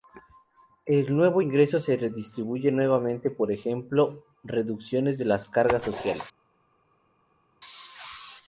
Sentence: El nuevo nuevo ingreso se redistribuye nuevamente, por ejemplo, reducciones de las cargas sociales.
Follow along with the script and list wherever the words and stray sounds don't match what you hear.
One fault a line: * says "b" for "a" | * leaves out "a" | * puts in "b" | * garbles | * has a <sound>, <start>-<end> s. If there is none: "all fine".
* leaves out "nuevo"